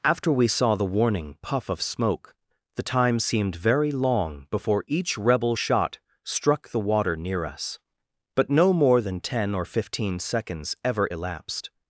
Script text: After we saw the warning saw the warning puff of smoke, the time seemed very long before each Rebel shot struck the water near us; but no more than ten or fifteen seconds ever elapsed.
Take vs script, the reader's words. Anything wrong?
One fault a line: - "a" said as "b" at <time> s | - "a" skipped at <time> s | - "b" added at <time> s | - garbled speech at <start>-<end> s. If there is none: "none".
- "saw the warning" skipped at 1.4 s